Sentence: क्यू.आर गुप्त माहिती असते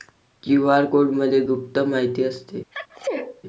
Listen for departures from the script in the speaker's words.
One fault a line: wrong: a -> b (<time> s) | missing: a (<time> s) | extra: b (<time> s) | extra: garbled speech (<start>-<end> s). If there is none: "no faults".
extra: कोडमध्ये (0.8 s)